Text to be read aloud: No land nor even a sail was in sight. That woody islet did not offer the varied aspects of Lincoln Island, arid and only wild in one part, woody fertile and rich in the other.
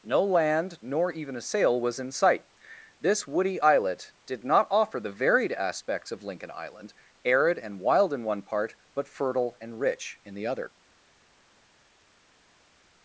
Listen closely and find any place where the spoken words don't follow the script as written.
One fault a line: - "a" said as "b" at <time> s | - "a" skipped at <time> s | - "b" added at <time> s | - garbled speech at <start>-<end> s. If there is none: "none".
- "That" said as "This" at 3.0 s
- "only" skipped at 7.8 s
- "woody" said as "but" at 8.9 s